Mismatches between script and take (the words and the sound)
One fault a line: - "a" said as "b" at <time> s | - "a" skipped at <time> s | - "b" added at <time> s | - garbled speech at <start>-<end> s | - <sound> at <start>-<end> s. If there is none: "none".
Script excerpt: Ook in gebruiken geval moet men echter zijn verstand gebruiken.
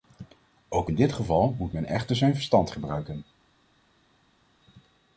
- "gebruiken" said as "dit" at 0.9 s